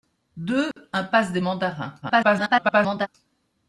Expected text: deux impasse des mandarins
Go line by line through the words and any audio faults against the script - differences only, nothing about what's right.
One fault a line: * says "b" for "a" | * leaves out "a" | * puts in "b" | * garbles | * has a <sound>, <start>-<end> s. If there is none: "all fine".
* has a dropout, 0.7-0.8 s
* garbles